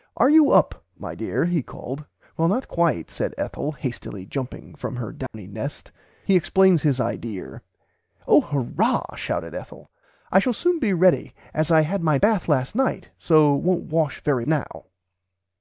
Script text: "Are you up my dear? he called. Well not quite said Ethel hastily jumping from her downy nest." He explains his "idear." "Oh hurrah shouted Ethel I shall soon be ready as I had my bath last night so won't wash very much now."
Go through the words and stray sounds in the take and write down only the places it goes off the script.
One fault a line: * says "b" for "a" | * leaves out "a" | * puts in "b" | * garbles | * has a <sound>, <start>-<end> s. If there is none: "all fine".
* has a dropout, 5.3-5.3 s
* leaves out "much"